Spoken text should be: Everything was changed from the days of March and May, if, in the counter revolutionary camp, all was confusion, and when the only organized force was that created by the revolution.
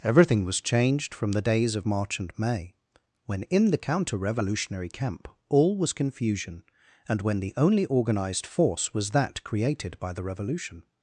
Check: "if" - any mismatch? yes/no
yes